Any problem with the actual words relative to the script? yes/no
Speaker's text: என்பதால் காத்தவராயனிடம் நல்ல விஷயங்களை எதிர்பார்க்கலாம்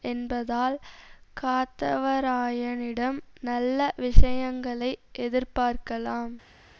no